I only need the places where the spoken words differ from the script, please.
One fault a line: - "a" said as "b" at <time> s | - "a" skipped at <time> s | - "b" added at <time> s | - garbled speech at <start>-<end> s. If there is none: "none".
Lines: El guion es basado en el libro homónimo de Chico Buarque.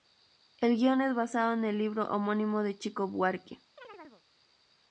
none